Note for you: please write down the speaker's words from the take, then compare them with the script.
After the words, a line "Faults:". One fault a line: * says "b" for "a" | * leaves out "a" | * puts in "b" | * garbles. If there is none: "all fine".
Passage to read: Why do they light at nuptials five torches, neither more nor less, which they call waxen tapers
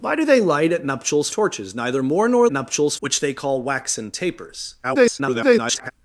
Why do they light at nuptials torches, neither more nor nuptials, which they call waxen tapers [garbled]
Faults:
* leaves out "five"
* says "nuptials" for "less"
* garbles